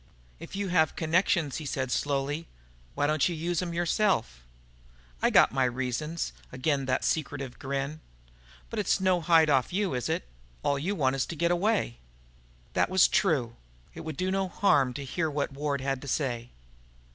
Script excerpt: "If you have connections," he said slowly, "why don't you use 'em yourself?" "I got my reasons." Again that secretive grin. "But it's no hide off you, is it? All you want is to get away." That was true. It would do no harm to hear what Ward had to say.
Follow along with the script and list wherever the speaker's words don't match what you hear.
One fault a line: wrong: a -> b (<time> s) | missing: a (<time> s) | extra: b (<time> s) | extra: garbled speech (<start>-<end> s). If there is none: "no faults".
no faults